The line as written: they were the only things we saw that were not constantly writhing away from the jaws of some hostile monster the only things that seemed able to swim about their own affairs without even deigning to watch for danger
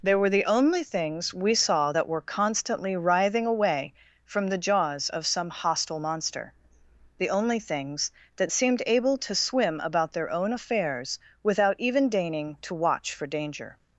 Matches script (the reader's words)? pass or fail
fail